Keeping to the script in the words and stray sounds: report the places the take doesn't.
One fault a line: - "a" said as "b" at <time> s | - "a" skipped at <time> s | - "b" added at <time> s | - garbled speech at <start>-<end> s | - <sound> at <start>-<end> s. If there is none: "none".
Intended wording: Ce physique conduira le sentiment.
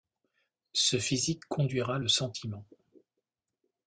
none